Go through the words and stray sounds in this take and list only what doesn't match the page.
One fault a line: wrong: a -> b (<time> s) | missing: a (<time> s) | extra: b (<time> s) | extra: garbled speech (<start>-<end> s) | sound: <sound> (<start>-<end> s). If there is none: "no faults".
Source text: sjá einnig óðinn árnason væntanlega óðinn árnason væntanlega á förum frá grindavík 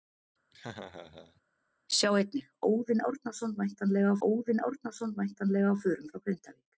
sound: laugh (0.5-1.4 s)